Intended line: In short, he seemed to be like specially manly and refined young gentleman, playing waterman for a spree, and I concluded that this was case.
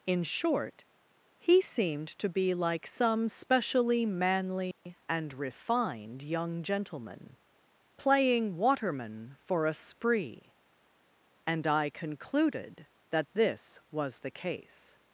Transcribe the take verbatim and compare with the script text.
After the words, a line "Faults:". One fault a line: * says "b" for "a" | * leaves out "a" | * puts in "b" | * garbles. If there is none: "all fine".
In short, he seemed to be like some specially manly and refined young gentleman, playing waterman for a spree, and I concluded that this was the case.
Faults:
* puts in "some"
* puts in "the"